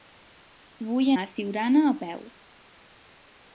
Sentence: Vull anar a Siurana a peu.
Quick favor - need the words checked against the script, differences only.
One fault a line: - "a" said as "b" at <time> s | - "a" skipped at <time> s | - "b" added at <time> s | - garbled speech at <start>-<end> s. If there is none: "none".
- "anar" skipped at 1.1 s